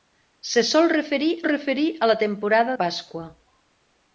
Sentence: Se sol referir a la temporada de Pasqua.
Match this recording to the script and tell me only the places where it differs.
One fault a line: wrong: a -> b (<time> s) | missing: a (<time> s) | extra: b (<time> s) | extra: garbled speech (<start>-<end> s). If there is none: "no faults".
extra: referir (1.4 s)
missing: de (2.7 s)